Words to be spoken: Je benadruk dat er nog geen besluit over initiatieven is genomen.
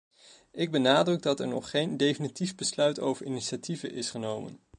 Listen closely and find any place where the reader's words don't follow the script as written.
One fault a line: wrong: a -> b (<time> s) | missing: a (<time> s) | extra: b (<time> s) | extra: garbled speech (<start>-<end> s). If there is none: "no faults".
wrong: Je -> Ik (0.5 s)
extra: definitief (2.0 s)